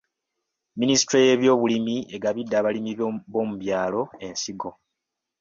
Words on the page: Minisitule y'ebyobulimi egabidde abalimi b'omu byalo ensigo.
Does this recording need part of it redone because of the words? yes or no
no